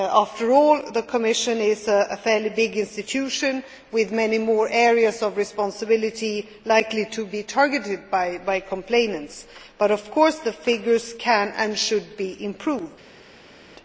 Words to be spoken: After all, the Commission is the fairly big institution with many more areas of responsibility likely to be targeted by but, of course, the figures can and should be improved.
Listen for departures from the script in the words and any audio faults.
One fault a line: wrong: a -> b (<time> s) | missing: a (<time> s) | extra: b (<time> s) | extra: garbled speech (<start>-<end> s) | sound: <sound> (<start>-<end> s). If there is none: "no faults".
wrong: the -> a (1.9 s)
extra: complainants (8.7 s)